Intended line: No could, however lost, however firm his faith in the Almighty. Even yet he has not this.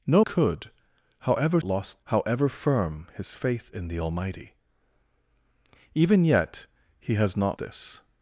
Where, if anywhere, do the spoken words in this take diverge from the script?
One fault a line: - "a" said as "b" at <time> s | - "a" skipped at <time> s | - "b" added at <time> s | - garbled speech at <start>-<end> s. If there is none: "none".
none